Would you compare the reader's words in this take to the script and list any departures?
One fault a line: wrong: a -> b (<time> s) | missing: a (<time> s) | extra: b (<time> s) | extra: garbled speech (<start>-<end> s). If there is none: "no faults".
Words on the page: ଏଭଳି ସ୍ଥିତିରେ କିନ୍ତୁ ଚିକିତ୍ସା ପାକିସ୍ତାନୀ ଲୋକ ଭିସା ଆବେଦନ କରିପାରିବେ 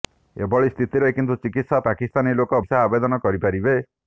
no faults